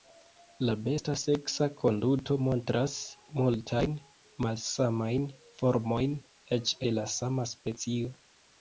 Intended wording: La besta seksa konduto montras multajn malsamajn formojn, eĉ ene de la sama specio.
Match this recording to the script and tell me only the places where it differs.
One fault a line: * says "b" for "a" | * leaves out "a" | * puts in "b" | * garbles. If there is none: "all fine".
* leaves out "ene"